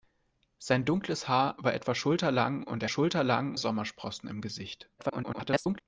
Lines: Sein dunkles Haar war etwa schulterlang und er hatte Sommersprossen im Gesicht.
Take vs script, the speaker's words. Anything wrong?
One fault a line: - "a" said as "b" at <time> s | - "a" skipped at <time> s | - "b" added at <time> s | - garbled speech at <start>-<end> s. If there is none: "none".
- "hatte" said as "schulterlang" at 2.9 s
- garbled speech at 5.0-5.8 s